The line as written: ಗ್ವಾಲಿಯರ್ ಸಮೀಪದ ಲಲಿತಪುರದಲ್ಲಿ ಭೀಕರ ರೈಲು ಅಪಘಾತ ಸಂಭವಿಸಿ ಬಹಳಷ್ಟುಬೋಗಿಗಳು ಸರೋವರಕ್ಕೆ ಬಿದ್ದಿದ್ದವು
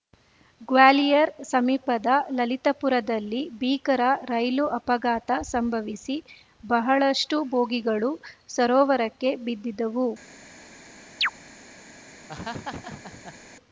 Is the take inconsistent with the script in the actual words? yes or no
no